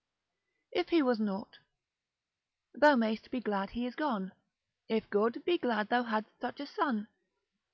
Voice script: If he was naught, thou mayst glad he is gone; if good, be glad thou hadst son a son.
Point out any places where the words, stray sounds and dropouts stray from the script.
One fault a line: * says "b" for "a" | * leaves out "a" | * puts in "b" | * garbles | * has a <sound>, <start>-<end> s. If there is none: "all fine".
* puts in "be"
* says "such" for "son"